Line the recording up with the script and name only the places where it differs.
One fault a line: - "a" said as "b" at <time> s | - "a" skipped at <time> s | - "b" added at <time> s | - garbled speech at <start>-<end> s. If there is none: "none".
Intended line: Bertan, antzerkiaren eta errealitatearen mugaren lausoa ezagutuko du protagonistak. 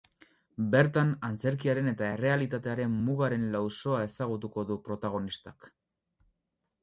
none